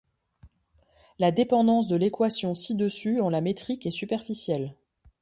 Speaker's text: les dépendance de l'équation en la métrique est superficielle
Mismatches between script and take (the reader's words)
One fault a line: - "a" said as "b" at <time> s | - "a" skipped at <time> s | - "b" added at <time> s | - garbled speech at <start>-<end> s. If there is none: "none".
- "les" said as "la" at 1.2 s
- "ci dessus" added at 2.5 s